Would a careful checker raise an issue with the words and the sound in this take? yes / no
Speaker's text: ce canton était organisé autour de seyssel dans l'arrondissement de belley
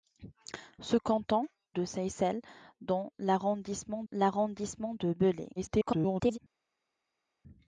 yes